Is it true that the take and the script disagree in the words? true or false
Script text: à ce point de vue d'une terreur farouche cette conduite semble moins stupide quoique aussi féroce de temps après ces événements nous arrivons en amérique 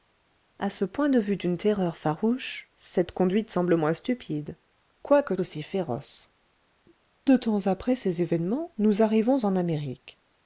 false